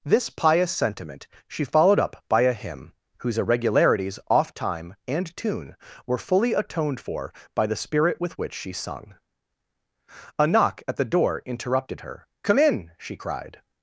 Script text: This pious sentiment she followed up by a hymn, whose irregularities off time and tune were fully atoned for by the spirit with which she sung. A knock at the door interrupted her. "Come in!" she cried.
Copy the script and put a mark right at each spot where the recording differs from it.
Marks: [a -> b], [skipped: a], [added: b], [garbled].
This pious sentiment she followed up by a hymn, whose irregularities off time and tune were fully atoned for by the spirit with which she sung. A knock at the door interrupted her. "Come in!" she cried.